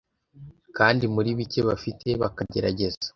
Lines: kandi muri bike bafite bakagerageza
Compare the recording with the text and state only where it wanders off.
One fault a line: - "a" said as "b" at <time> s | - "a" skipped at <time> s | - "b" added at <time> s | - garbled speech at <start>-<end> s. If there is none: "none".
none